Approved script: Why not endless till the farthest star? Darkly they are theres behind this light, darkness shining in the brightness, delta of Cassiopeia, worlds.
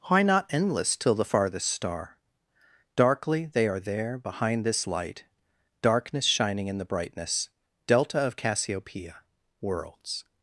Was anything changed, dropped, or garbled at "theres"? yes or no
yes